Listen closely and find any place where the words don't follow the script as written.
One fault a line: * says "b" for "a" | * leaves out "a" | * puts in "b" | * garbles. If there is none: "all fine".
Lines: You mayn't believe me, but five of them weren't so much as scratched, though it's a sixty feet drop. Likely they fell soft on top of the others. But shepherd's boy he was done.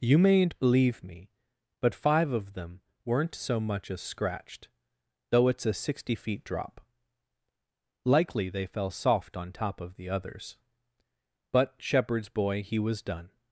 all fine